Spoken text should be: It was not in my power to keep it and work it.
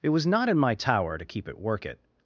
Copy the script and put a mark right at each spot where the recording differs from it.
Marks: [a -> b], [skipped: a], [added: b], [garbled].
It was not in my [power -> tower] to keep it [skipped: and] work it.